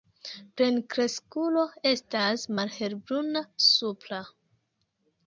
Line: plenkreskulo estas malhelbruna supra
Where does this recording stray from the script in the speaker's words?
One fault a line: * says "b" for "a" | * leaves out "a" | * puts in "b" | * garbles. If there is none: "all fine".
all fine